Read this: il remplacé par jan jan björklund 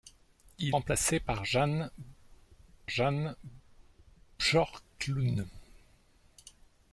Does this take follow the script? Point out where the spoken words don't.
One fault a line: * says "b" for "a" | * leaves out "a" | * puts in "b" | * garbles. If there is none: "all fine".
all fine